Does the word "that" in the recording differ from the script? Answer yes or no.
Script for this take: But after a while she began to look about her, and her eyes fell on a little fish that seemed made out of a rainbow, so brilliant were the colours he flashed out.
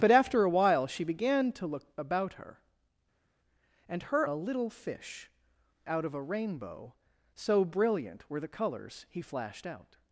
yes